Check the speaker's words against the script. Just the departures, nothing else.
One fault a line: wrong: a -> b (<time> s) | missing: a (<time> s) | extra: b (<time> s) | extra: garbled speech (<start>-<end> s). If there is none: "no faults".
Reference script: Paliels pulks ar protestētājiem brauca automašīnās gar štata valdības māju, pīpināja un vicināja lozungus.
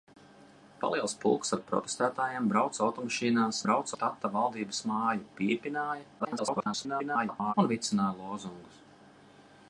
wrong: gar -> brauca (3.7 s)
extra: garbled speech (6.2-7.5 s)